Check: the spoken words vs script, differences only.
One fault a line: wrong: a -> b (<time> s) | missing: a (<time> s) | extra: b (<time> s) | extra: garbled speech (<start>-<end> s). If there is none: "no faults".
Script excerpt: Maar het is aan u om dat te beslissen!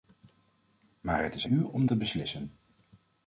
missing: aan (1.5 s)
missing: dat (1.9 s)